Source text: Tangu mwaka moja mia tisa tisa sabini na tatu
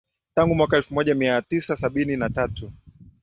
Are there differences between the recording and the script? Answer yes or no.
yes